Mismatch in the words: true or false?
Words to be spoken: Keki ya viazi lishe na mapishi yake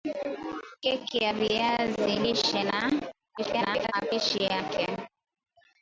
true